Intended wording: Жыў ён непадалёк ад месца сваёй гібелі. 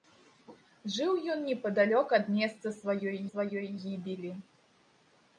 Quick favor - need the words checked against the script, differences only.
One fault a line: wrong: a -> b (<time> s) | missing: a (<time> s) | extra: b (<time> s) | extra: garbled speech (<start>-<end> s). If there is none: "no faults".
extra: сваёй (3.3 s)